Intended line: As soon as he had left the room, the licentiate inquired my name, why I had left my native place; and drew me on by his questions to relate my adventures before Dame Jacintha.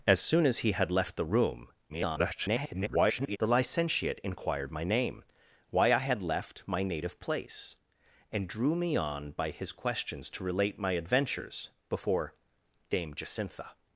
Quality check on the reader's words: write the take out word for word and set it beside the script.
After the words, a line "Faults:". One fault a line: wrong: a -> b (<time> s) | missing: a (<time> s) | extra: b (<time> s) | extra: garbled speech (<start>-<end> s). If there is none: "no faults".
As soon as he had left the room, [garbled] the licentiate inquired my name, why I had left my native place; and drew me on by his questions to relate my adventures before Dame Jacintha.
Faults:
extra: garbled speech (1.9-3.4 s)